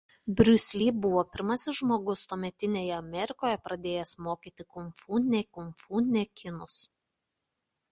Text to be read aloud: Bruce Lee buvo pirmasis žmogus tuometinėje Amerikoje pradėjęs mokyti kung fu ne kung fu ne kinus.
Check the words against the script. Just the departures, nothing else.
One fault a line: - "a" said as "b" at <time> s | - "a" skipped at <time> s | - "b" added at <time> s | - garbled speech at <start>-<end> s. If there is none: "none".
none